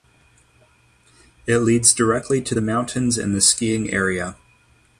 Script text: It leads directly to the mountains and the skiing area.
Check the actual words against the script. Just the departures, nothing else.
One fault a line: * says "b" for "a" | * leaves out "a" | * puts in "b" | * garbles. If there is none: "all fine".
all fine